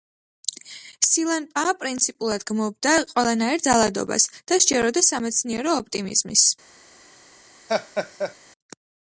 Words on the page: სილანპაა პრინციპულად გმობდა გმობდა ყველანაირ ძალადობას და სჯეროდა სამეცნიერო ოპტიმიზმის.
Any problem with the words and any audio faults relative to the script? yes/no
yes